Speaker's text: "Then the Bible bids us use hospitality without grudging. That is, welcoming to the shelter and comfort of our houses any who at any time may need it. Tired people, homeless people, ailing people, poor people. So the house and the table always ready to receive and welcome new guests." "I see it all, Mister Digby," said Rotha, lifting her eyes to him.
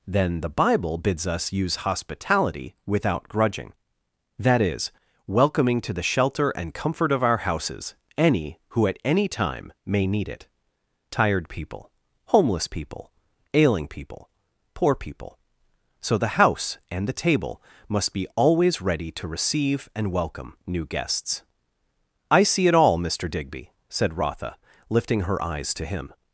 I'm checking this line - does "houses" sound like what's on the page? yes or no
yes